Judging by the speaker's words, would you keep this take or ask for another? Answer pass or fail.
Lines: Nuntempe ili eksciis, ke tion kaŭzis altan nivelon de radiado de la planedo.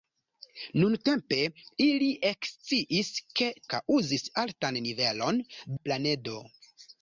fail